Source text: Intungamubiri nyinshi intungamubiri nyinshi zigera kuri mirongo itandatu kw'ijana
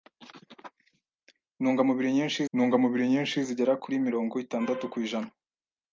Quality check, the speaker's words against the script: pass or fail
pass